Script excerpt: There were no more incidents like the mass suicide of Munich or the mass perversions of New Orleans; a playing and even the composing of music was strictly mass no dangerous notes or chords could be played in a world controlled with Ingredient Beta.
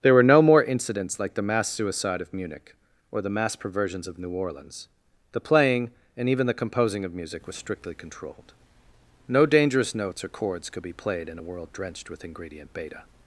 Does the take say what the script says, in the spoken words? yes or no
no